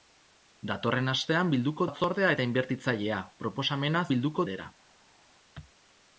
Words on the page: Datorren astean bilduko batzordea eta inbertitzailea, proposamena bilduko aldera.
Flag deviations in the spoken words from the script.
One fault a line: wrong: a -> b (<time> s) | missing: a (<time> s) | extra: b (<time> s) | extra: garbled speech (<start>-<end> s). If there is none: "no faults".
no faults